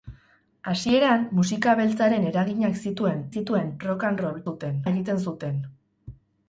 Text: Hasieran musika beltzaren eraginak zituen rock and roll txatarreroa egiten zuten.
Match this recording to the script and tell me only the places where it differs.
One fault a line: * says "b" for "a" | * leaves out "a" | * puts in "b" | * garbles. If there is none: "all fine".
* puts in "zituen"
* says "zuten" for "txatarreroa"